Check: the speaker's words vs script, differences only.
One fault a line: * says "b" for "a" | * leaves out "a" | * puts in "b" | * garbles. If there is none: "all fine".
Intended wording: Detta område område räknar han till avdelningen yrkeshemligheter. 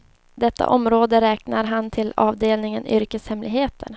* leaves out "område"